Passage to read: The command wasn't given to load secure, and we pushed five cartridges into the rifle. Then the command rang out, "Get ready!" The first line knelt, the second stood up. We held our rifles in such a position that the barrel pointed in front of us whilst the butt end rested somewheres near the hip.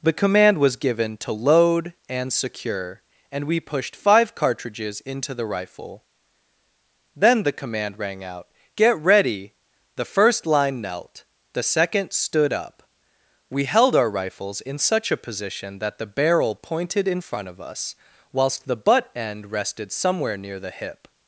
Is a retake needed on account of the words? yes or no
yes